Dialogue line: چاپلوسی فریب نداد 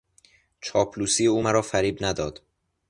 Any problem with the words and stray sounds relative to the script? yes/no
yes